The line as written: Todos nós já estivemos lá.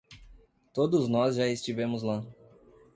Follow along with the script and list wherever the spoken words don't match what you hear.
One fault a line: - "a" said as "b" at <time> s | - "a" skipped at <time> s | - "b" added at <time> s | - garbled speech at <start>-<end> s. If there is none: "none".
none